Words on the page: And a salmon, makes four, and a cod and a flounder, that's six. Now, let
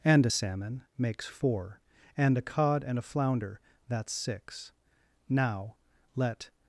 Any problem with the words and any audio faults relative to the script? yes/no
no